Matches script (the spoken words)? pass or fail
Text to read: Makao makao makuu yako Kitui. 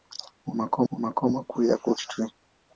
pass